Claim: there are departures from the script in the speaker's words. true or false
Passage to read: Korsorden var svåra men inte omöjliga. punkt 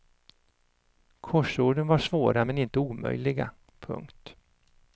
false